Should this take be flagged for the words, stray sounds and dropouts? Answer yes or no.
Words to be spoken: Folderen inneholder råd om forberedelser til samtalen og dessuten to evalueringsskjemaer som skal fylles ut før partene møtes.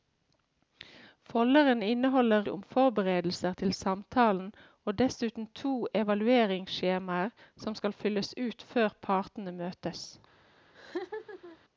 yes